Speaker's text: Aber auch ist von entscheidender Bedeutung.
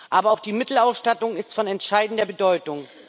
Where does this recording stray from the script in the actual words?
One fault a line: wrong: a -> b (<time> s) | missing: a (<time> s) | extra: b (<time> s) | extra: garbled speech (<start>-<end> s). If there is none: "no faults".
extra: die Mittelausstattung (0.4 s)